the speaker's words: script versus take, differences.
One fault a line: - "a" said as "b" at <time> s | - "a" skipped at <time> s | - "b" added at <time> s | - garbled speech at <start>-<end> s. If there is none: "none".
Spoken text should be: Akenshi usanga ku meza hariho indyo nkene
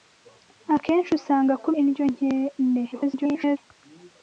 - "meza hariho" skipped at 1.7 s
- garbled speech at 2.9-3.6 s